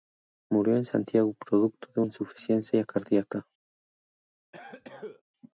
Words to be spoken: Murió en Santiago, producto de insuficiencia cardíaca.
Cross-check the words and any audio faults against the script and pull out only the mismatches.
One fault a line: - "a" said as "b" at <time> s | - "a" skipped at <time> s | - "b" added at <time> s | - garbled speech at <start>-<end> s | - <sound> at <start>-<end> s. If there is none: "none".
- cough at 4.5-5.2 s